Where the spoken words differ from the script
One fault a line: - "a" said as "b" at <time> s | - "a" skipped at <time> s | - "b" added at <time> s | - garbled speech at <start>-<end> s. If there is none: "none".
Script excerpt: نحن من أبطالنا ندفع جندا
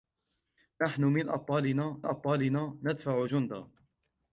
- "أبطالنا" added at 2.0 s